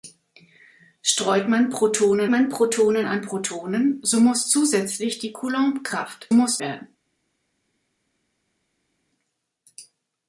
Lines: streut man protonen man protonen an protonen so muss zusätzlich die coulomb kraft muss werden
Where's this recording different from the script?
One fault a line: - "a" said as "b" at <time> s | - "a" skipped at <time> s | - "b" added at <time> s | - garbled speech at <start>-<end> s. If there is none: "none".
none